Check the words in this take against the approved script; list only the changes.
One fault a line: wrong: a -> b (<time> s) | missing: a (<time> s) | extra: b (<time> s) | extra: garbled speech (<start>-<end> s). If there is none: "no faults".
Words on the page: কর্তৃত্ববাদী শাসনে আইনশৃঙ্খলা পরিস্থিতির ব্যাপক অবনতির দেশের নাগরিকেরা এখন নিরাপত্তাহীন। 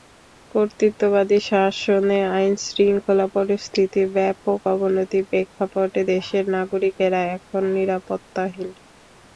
extra: প্রেক্ষাপটে (5.3 s)